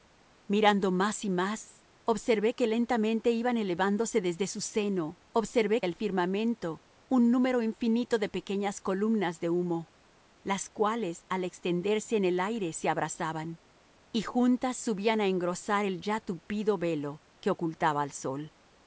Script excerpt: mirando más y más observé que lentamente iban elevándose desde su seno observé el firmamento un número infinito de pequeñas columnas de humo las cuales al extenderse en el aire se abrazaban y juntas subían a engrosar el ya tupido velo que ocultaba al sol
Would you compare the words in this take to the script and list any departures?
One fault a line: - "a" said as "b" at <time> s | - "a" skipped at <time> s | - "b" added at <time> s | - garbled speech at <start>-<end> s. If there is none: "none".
none